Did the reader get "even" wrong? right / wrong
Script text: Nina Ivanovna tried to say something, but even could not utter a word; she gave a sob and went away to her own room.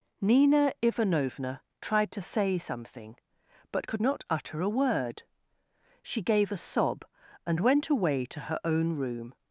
wrong